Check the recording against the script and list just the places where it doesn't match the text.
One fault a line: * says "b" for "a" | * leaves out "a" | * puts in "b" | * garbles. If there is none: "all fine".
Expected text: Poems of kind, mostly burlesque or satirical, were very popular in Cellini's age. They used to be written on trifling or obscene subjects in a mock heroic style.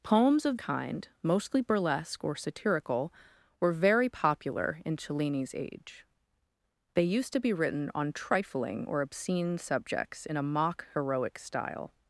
all fine